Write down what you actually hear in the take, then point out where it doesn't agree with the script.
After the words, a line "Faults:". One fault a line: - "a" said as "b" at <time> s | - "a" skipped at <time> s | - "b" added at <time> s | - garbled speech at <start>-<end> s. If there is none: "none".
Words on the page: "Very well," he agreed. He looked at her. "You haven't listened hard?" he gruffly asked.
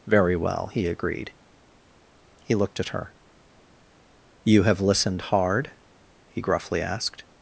"Very well," he agreed. He looked at her. "You have listened hard?" he gruffly asked.
Faults:
- "haven't" said as "have" at 4.6 s